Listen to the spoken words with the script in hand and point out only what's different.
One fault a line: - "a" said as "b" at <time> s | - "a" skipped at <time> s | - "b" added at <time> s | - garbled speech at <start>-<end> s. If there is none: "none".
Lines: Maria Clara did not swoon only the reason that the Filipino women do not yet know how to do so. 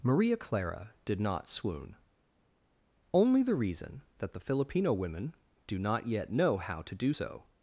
none